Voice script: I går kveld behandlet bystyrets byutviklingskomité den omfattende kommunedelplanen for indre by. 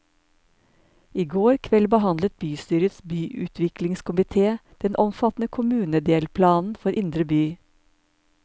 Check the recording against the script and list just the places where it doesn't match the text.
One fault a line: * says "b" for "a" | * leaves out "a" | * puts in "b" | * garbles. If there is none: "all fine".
all fine